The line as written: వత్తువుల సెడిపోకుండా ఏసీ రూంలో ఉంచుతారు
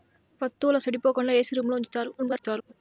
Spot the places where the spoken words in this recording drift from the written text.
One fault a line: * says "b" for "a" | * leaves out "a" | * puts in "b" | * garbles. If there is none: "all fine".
* garbles